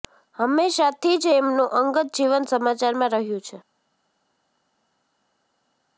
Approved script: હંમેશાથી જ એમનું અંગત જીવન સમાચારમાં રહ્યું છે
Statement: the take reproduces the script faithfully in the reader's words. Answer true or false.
true